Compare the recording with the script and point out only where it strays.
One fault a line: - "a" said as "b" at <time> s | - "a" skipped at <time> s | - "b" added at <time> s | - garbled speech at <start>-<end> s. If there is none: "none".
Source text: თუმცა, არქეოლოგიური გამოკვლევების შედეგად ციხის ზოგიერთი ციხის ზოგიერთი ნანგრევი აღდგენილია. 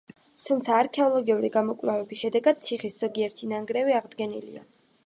- "ციხის ზოგიერთი" skipped at 3.6 s